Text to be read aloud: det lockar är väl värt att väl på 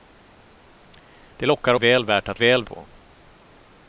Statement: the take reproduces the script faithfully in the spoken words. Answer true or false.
true